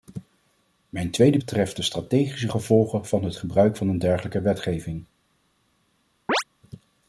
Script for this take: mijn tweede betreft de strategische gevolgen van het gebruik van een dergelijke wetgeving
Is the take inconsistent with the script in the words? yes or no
no